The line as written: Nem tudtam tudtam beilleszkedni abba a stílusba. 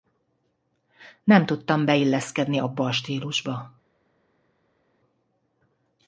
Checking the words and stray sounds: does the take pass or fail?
fail